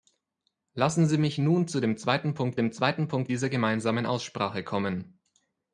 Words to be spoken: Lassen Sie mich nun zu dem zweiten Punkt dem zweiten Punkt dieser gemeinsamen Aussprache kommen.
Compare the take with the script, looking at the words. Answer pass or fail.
pass